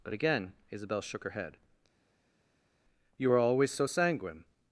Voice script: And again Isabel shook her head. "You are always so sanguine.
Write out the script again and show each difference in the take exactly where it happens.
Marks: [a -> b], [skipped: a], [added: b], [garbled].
[And -> But] again Isabel shook her head. "You are always so sanguine.